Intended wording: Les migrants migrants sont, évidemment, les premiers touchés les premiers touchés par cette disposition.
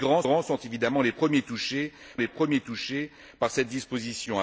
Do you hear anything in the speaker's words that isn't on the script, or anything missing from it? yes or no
no